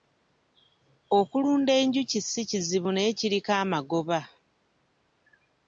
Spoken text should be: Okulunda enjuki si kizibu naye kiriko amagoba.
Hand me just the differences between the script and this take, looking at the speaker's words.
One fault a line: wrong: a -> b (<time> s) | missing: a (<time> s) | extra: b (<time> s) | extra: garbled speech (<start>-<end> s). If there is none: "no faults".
no faults